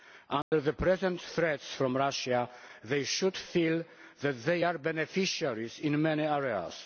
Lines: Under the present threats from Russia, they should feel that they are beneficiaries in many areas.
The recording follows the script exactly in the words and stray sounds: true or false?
false